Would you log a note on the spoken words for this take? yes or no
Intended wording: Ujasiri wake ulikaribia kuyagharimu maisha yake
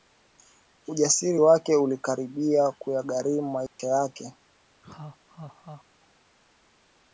no